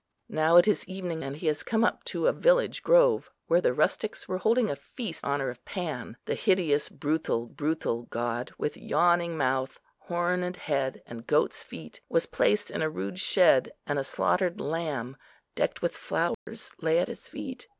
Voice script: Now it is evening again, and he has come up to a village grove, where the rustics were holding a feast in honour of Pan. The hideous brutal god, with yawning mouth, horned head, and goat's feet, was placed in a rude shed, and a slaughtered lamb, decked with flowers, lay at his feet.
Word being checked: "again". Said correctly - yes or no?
no